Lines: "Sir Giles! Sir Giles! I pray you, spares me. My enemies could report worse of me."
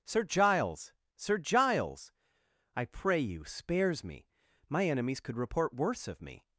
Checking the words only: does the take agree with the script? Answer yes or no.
yes